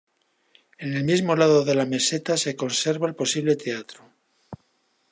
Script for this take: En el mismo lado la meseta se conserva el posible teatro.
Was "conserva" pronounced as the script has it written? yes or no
yes